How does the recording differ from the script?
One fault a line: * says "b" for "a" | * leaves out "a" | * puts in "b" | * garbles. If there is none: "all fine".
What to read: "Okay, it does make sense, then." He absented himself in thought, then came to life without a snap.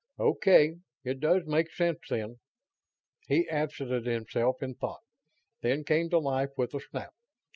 * says "with" for "without"